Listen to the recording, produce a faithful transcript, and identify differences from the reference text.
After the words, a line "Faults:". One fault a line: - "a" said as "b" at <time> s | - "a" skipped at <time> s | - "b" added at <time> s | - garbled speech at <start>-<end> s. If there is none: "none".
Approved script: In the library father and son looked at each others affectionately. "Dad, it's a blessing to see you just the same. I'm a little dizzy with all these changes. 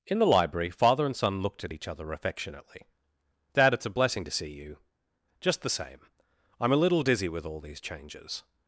In the library father and son looked at each other affectionately. "Dad, it's a blessing to see you just the same. I'm a little dizzy with all these changes.
Faults:
- "others" said as "other" at 1.9 s